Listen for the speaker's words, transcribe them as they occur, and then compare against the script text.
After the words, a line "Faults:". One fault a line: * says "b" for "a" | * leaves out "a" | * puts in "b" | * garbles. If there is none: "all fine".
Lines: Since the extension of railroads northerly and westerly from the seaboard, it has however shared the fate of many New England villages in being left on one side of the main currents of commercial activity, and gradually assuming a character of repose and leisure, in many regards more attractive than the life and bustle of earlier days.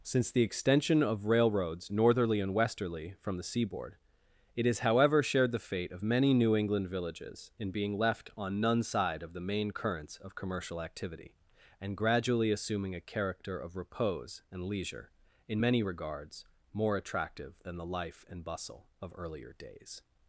Since the extension of railroads northerly and westerly from the seaboard, it has however shared the fate of many New England villages in being left on none side of the main currents of commercial activity, and gradually assuming a character of repose and leisure, in many regards more attractive than the life and bustle of earlier days.
Faults:
* says "none" for "one"